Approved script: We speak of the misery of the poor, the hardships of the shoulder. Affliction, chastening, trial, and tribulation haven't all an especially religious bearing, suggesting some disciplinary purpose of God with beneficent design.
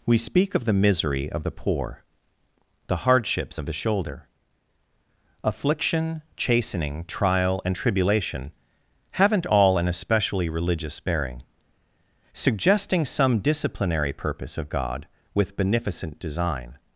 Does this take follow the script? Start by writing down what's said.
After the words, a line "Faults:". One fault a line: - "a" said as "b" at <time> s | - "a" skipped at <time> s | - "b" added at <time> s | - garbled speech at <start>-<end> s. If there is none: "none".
We speak of the misery of the poor, the hardships of the shoulder. Affliction, chastening, trial, and tribulation haven't all an especially religious bearing, suggesting some disciplinary purpose of God with beneficent design.
Faults:
none